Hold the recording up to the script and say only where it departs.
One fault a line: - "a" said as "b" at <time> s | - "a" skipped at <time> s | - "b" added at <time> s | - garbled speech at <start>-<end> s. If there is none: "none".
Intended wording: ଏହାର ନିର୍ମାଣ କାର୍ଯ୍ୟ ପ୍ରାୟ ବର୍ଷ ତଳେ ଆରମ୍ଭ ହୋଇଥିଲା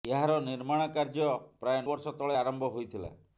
none